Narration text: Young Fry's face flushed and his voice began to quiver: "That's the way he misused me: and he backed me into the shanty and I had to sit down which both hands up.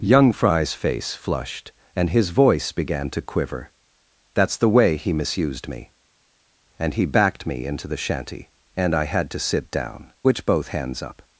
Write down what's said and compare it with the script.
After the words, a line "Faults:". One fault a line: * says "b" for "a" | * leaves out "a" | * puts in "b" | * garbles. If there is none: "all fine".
Young Fry's face flushed and his voice began to quiver: "That's the way he misused me: and he backed me into the shanty and I had to sit down which both hands up.
Faults:
all fine